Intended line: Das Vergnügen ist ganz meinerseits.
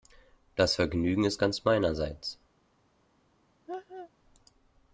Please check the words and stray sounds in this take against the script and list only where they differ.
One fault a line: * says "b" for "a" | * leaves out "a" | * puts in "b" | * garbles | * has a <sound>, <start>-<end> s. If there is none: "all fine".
* has a laugh, 3.7-4.1 s